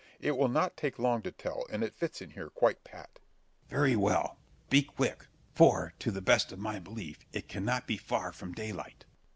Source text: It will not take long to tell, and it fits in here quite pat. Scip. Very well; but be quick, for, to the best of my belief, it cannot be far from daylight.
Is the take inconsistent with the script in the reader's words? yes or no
yes